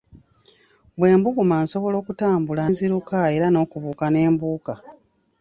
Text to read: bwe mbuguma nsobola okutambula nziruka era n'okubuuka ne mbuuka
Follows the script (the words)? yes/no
yes